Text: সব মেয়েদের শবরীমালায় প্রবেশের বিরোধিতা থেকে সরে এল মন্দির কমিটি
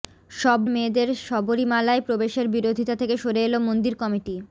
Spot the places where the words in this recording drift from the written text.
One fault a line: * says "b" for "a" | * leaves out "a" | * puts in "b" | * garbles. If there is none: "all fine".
all fine